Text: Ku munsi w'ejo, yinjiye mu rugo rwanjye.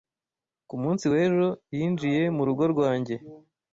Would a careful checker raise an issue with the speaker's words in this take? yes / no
no